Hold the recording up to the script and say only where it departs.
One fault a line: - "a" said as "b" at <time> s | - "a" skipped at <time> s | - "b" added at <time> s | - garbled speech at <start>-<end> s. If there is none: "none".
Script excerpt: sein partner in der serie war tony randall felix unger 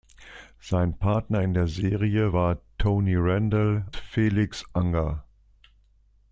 none